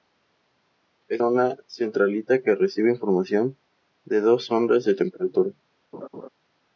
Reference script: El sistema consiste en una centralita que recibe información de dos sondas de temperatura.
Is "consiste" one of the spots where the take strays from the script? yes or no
yes